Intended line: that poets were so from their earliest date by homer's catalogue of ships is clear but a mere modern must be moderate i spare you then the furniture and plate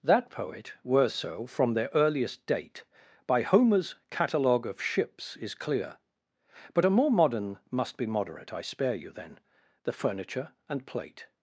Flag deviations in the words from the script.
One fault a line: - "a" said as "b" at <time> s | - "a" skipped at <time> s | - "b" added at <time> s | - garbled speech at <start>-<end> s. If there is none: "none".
- "poets" said as "poet" at 0.3 s
- "mere" said as "more" at 6.9 s